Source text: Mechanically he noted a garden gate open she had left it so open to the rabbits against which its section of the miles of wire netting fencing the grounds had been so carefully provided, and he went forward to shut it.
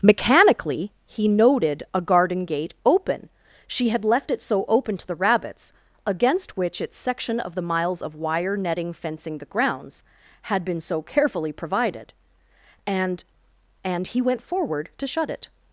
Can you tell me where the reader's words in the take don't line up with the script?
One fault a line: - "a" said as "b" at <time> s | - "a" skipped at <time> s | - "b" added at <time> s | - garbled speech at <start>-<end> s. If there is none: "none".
- "and" added at 13.8 s